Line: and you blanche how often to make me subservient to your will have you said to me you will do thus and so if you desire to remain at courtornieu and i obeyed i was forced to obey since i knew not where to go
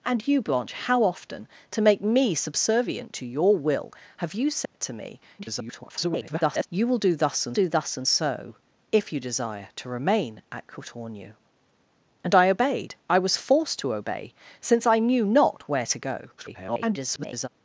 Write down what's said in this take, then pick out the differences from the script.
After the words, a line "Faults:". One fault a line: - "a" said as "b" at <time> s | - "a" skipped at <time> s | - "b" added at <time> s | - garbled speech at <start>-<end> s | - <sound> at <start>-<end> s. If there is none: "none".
and you blanche how often to make me subservient to your will have you said to me [garbled] you will do thus and do thus and so if you desire to remain at courtornieu and i obeyed i was forced to obey since i knew not where to go [garbled]
Faults:
- dropout at 4.7-4.7 s
- garbled speech at 5.4-6.7 s
- "do thus and" added at 7.5 s
- garbled speech at 16.4-17.5 s